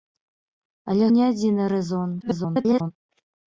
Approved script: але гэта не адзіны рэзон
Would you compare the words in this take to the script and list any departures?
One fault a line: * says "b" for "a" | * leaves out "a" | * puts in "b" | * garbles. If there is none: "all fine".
* leaves out "гэта"
* garbles